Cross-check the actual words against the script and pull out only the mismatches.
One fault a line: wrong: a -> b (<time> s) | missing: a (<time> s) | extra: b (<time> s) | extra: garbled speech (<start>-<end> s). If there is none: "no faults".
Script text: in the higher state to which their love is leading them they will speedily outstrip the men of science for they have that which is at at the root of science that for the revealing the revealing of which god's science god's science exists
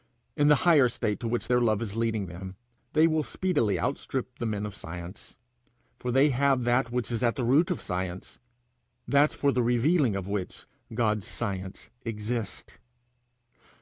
missing: at (7.3 s)
missing: the revealing (10.1 s)
missing: god's science (11.9 s)